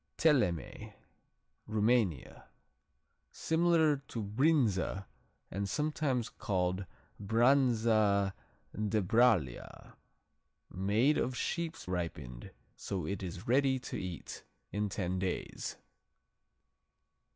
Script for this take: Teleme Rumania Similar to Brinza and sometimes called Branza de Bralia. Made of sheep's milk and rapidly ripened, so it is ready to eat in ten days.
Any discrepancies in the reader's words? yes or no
yes